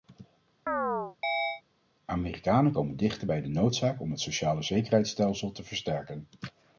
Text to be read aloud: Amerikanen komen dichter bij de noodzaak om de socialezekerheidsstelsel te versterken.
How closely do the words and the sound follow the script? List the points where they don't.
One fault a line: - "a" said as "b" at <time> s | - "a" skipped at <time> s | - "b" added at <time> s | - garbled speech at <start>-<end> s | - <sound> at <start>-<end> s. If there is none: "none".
- chirp at 0.7-1.6 s
- "de" said as "het" at 4.1 s